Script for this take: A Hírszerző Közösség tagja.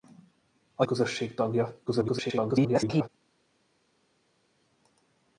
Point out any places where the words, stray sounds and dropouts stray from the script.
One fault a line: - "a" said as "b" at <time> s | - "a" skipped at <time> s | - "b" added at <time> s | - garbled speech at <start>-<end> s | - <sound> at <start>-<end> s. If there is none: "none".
- "Hírszerző" skipped at 0.8 s
- garbled speech at 1.9-3.1 s